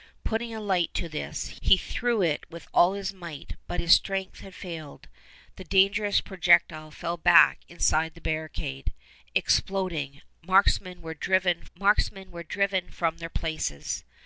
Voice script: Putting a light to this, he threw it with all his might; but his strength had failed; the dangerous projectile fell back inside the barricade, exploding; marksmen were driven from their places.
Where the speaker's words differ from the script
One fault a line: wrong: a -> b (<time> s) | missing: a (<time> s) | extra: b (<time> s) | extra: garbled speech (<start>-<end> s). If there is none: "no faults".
extra: marksmen were driven (11.7 s)